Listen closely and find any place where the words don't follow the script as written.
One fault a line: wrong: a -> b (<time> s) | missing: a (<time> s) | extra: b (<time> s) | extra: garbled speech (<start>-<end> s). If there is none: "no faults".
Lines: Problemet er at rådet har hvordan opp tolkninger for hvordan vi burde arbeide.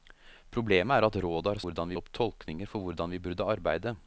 no faults